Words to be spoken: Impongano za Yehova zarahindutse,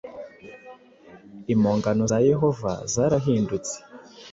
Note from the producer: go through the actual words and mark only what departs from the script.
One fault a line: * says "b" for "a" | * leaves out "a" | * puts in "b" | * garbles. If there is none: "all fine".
all fine